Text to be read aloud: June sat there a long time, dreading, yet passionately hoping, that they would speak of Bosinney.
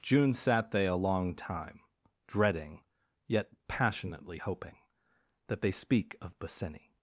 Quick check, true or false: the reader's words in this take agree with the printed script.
false